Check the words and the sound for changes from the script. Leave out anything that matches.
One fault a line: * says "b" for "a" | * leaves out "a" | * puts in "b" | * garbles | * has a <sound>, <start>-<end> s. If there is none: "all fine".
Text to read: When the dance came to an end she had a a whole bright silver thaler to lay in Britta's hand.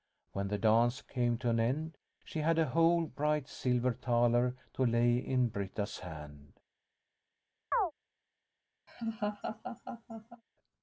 * leaves out "a"
* has a chirp, 7.7-7.9 s
* has a laugh, 8.9-10.4 s